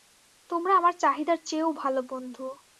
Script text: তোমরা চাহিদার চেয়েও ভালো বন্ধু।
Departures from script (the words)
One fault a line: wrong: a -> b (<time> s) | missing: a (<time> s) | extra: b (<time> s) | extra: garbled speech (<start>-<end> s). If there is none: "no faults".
extra: আমার (0.8 s)